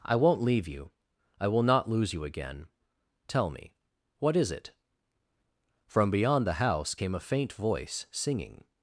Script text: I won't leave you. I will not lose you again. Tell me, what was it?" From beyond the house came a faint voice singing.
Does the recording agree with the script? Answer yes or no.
no